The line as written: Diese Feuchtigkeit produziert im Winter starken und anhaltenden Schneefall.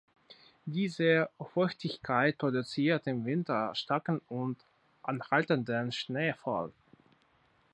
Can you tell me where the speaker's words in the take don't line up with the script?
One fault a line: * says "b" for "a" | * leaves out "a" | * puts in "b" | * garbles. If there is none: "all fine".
all fine